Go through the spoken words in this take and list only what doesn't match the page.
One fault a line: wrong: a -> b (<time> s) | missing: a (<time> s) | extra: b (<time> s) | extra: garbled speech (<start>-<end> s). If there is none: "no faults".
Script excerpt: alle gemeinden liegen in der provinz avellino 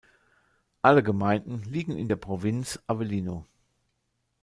no faults